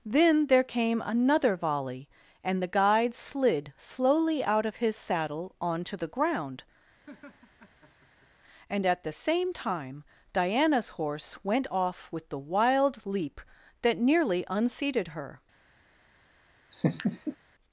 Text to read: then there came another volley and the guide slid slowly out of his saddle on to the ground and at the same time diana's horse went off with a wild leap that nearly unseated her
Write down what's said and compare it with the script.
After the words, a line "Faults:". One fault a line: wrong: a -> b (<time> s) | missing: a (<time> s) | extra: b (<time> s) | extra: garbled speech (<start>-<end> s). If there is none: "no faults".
then there came another volley and the guide slid slowly out of his saddle on to the ground and at the same time diana's horse went off with the wild leap that nearly unseated her
Faults:
wrong: a -> the (12.3 s)